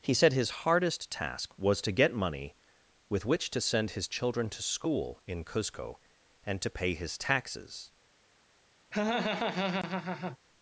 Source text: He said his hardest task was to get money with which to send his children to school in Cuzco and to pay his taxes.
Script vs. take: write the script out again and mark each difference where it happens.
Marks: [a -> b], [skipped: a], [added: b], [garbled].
He said his hardest task was to get money with which to send his children to school in Cuzco and to pay his taxes.